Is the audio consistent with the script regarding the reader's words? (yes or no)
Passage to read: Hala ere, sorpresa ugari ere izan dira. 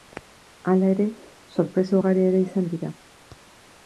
yes